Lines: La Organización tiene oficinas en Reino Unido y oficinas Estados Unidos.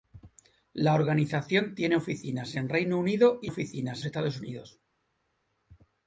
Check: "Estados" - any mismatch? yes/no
no